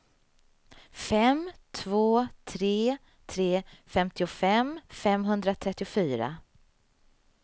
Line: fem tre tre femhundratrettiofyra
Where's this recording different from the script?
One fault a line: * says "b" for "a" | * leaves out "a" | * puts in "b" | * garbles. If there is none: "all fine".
* puts in "två"
* puts in "femtiofem"